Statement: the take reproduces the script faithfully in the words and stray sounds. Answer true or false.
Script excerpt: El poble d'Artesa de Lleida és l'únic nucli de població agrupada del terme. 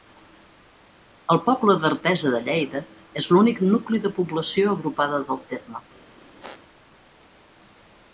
false